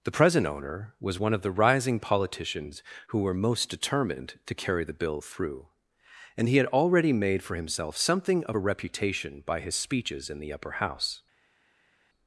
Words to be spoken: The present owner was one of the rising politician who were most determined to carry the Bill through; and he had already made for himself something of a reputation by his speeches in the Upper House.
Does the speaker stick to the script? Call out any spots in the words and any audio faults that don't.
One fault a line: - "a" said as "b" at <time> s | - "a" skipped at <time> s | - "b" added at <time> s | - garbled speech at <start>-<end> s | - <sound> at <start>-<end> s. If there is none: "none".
- "politician" said as "politicians" at 2.0 s